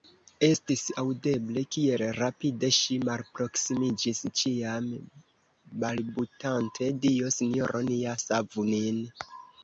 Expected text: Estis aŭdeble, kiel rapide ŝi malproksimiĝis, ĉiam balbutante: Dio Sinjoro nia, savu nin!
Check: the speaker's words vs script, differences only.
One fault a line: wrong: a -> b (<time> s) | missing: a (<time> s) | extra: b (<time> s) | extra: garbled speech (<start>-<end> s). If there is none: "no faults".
no faults